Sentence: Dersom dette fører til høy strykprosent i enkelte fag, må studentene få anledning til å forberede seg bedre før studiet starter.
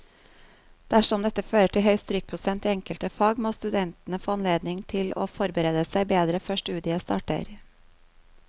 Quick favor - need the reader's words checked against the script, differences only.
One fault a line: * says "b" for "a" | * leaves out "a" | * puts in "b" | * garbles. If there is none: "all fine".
all fine